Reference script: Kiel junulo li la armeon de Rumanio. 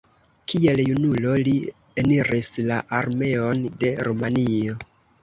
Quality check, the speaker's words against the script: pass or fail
fail